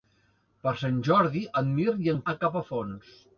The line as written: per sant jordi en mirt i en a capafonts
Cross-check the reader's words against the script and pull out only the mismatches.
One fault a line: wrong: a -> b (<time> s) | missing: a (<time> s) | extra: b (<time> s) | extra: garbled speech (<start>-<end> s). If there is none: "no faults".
no faults